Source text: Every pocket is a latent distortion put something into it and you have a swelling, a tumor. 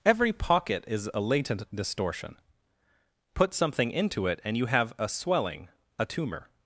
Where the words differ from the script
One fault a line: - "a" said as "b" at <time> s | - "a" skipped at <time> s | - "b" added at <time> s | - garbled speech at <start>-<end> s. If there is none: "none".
none